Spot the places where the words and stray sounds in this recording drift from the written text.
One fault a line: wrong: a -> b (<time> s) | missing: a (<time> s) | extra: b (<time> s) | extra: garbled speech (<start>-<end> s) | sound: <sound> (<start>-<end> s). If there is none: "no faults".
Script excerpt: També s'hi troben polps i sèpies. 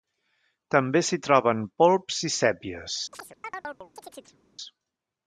sound: chirp (3.1-4.4 s)